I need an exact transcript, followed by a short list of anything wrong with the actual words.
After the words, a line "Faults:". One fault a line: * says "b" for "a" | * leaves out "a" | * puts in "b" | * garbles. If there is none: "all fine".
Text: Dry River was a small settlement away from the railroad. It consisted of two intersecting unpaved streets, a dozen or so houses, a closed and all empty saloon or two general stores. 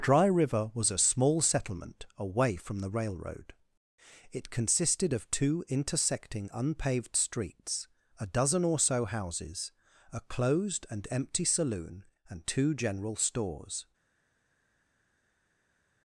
Dry River was a small settlement away from the railroad. It consisted of two intersecting unpaved streets, a dozen or so houses, a closed and empty saloon and two general stores.
Faults:
* leaves out "all"
* says "and" for "or"